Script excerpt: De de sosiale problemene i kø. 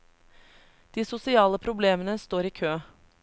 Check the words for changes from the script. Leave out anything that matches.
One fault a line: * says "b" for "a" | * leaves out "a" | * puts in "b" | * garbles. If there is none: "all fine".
* leaves out "de"
* puts in "står"